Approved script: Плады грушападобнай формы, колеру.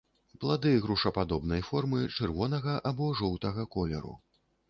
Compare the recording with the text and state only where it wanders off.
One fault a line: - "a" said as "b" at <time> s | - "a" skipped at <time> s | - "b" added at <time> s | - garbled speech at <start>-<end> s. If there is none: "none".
- "чырвонага або жоўтага" added at 2.2 s